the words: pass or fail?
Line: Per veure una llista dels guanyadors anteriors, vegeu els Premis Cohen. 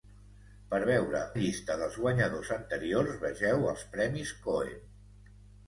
fail